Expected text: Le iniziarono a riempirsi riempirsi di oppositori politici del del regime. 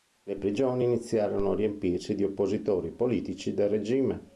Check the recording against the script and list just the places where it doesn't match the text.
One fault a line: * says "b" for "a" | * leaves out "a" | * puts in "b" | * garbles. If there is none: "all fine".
* puts in "prigioni"
* leaves out "riempirsi"
* leaves out "del"